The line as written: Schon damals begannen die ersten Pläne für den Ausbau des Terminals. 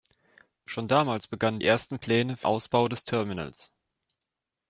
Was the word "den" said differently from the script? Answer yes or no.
yes